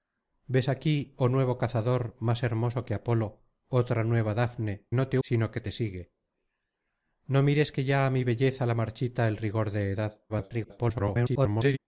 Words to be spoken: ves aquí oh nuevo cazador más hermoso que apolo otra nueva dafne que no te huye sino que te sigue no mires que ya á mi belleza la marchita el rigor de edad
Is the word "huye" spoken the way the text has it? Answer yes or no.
no